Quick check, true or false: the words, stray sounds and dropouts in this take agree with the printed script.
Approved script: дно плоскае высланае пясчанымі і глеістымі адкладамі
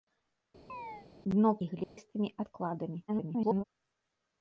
false